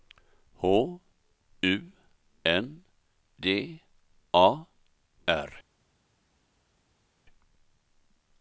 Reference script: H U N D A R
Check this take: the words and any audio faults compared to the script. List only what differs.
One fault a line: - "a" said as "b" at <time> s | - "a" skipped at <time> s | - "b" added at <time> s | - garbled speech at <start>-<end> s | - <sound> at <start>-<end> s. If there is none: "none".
none